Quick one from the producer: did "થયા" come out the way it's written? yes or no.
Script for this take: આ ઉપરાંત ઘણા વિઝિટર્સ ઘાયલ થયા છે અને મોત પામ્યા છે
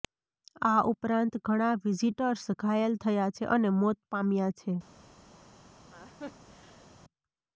yes